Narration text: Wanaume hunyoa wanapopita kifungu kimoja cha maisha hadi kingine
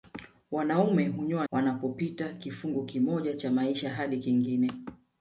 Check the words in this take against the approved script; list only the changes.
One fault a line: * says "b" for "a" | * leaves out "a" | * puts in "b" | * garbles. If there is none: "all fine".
all fine